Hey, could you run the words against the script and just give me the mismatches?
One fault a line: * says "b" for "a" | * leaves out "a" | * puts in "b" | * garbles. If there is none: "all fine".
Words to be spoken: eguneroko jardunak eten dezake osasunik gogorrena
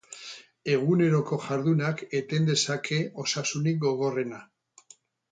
all fine